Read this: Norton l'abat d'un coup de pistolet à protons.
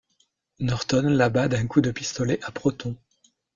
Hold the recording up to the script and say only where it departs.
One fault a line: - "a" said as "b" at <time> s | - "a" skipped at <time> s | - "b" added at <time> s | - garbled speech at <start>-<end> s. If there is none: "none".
none